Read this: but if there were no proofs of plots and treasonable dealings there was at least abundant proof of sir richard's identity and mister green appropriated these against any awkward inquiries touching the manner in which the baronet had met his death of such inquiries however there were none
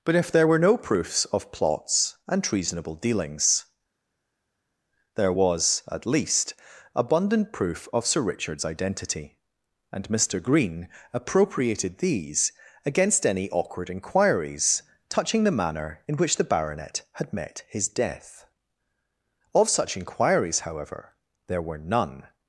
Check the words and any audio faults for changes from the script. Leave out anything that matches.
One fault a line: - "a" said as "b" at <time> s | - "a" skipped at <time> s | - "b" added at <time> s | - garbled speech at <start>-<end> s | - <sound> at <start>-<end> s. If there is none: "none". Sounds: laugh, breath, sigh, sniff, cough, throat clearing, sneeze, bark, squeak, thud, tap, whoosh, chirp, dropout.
none